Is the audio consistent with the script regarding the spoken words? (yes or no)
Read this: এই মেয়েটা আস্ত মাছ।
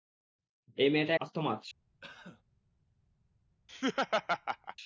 yes